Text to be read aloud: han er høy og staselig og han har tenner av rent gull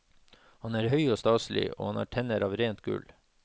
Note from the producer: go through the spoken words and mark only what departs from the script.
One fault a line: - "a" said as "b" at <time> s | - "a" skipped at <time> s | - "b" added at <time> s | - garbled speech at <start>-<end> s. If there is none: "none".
none